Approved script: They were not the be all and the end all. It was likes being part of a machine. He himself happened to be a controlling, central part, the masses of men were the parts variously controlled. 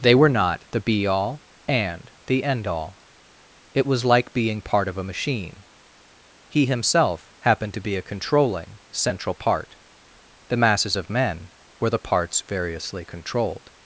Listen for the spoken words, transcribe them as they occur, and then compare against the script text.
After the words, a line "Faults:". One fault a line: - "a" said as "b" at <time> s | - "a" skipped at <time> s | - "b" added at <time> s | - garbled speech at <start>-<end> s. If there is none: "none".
They were not the be all and the end all. It was like being part of a machine. He himself happened to be a controlling, central part, the masses of men were the parts variously controlled.
Faults:
- "likes" said as "like" at 4.0 s